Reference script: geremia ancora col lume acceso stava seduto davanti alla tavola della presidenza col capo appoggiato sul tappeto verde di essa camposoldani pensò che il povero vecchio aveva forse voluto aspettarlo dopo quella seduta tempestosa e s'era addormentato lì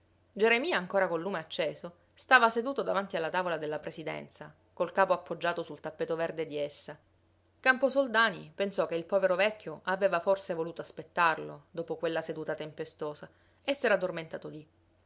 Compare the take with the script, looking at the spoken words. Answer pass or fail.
pass